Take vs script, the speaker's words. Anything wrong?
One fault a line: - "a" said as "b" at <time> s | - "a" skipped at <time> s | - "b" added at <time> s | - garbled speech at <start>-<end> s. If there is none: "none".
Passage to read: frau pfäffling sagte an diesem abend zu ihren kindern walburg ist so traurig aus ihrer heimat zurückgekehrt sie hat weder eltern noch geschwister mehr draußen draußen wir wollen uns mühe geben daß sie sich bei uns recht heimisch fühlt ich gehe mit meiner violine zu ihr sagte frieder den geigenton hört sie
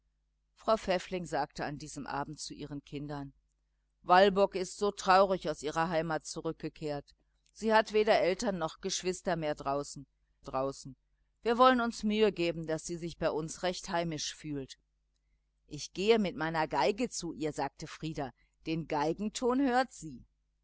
none